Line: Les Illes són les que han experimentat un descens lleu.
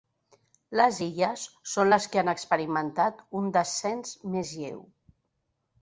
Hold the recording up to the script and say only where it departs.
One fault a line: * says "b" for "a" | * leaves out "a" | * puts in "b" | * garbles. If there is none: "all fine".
* puts in "més"